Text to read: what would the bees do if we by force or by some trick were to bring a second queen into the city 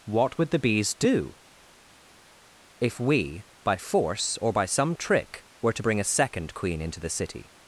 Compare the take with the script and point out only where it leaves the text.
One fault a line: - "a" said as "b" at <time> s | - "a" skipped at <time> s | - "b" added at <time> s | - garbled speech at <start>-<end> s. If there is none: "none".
none